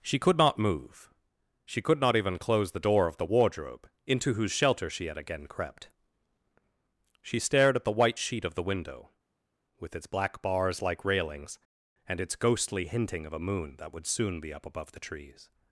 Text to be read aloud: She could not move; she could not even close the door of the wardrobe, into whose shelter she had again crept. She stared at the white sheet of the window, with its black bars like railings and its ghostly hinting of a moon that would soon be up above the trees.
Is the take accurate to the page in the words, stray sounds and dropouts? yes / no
yes